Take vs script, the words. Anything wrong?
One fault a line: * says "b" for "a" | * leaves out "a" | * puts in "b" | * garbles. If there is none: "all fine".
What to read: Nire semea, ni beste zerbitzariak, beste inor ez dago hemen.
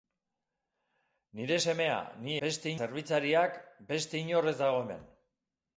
all fine